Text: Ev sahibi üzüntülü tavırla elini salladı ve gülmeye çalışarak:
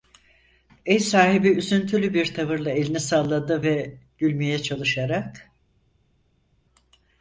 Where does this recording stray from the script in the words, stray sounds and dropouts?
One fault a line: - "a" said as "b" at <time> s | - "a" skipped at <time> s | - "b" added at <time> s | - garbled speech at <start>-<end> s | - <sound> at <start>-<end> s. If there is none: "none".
- "bir" added at 2.1 s